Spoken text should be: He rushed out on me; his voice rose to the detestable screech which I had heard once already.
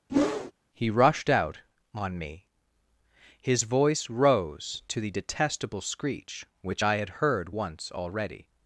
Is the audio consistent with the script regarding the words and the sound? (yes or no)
no